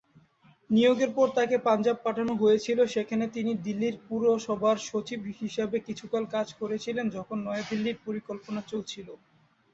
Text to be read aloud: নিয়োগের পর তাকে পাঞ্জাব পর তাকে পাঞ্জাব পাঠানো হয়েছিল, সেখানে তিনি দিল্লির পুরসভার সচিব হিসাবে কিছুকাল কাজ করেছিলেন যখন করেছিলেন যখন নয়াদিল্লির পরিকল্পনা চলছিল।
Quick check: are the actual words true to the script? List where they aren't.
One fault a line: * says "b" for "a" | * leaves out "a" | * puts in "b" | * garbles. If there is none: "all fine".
* leaves out "পর তাকে পাঞ্জাব"
* leaves out "করেছিলেন যখন"